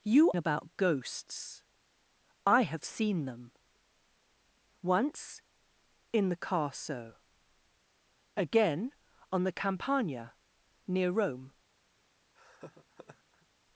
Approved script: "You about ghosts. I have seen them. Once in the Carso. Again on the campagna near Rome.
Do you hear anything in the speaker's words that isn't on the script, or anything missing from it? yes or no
no